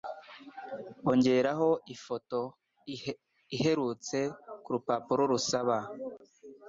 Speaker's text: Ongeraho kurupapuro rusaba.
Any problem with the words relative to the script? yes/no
yes